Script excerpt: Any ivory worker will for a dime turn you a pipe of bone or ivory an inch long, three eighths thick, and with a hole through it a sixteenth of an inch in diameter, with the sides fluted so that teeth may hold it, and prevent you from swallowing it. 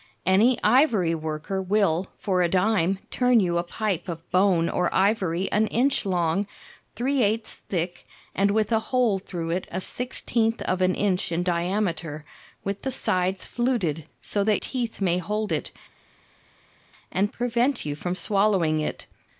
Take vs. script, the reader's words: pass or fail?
pass